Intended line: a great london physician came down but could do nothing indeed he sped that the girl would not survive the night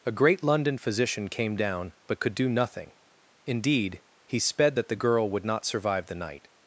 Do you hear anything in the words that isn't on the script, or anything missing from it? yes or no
no